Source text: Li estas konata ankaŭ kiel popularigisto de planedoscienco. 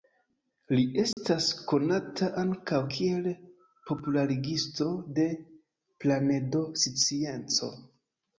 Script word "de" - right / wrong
right